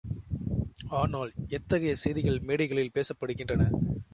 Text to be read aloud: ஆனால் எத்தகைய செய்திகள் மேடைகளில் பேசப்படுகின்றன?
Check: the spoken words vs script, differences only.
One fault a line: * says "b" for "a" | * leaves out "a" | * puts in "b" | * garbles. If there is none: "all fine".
all fine